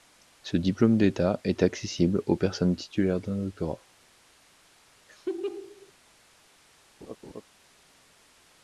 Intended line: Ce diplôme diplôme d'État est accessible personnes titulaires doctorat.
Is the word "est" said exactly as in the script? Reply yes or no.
yes